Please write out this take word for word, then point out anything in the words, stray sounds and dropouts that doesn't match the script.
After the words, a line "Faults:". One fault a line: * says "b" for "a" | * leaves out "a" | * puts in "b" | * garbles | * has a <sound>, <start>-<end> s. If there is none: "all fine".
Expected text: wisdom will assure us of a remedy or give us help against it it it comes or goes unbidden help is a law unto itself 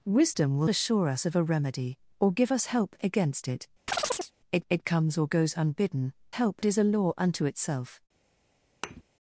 wisdom will assure us of a remedy or give us help against it it it comes or goes unbidden help is a law unto itself
Faults:
* has a chirp, 3.9-4.3 s
* has a thud, 8.8-9.0 s